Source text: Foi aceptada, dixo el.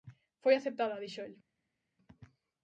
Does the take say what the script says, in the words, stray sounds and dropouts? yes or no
yes